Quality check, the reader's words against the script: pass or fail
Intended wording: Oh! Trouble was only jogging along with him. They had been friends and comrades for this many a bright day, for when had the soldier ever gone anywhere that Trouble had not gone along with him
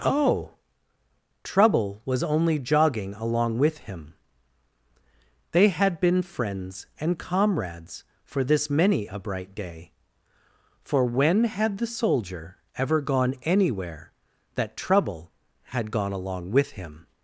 fail